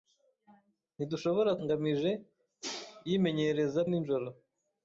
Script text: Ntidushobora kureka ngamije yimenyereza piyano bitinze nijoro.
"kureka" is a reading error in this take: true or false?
true